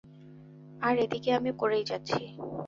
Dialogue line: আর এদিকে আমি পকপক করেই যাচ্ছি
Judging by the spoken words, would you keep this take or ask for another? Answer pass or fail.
fail